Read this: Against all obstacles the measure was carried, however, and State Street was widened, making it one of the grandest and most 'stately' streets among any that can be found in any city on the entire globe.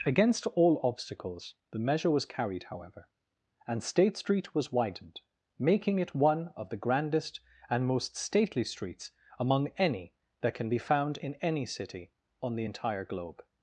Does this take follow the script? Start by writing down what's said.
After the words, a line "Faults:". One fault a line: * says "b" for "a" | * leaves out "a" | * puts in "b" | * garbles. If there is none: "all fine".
Against all obstacles the measure was carried, however, and State Street was widened, making it one of the grandest and most 'stately' streets among any that can be found in any city on the entire globe.
Faults:
all fine